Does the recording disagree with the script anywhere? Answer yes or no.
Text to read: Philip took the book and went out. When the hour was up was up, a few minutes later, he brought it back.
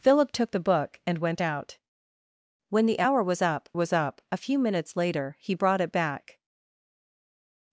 no